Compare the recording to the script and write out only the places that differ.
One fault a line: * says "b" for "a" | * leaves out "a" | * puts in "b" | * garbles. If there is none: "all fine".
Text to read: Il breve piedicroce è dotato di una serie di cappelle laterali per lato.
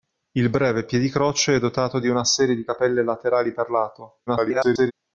* garbles